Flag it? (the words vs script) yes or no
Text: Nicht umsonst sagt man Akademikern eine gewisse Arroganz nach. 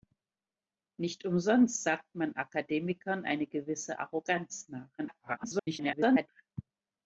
yes